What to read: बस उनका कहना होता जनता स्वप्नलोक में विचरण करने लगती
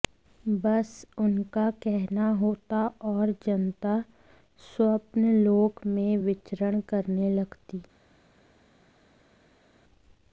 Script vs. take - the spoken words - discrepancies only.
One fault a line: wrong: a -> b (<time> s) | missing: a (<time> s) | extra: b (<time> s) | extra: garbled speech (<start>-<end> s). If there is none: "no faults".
extra: और (3.1 s)